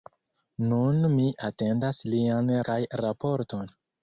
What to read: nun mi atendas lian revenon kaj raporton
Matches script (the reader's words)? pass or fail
fail